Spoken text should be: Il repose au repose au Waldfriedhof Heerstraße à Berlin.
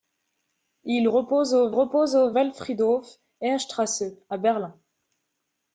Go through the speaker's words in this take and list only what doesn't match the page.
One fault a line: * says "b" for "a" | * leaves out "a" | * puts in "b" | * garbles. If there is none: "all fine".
all fine